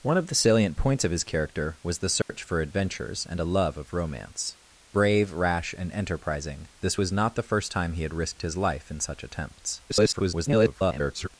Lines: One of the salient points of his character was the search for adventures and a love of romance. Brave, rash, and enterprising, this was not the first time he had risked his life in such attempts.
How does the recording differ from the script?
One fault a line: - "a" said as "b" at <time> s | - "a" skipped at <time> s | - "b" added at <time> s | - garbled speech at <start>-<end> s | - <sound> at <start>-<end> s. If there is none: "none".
- dropout at 2.2-2.3 s
- garbled speech at 9.9-11.3 s